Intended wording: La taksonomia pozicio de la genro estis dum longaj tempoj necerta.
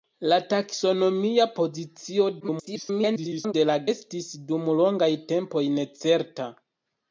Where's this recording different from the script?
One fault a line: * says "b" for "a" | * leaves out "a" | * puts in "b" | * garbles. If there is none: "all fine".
* garbles
* leaves out "genro"